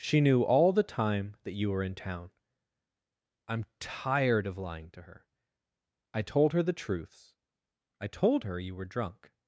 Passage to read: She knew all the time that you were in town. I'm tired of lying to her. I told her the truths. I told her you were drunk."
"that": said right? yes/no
yes